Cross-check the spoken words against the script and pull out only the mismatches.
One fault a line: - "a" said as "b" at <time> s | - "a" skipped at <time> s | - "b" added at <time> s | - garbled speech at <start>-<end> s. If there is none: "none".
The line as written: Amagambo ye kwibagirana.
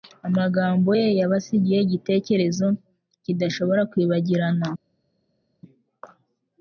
- "yabasigiye igitekerezo kidashobora" added at 1.2 s